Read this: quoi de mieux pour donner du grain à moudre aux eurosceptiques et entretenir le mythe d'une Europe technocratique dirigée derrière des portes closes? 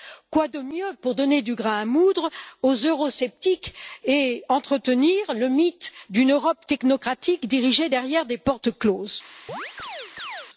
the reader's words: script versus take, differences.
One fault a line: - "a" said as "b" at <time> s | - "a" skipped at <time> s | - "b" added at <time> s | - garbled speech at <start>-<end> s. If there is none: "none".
none